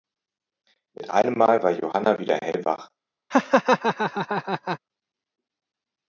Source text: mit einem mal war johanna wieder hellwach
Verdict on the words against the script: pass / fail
pass